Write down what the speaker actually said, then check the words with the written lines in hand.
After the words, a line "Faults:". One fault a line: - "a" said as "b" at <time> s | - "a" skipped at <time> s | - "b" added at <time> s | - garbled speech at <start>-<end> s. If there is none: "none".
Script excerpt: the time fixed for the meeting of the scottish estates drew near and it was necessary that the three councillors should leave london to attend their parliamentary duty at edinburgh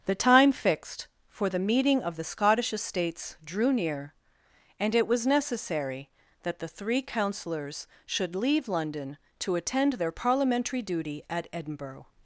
the time fixed for the meeting of the scottish estates drew near and it was necessary that the three councillors should leave london to attend their parliamentary duty at edinburgh
Faults:
none